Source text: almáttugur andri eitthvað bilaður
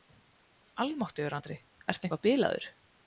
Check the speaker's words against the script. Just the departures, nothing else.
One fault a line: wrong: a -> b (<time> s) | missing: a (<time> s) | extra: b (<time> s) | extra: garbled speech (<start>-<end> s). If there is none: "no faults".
extra: ertu (1.9 s)